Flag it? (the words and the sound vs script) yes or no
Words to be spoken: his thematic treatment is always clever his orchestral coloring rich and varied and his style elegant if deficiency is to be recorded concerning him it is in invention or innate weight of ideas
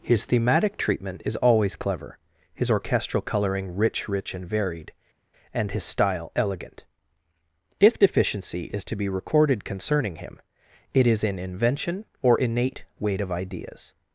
yes